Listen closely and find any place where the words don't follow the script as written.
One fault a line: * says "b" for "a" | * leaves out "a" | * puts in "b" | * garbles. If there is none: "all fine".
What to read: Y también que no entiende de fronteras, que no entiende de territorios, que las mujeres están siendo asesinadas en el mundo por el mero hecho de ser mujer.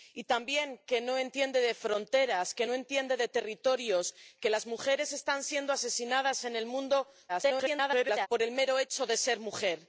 * garbles